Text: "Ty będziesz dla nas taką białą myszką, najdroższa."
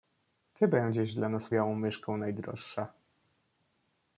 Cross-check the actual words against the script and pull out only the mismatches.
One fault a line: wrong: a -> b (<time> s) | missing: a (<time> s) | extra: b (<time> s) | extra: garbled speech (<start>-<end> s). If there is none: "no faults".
missing: taką (1.5 s)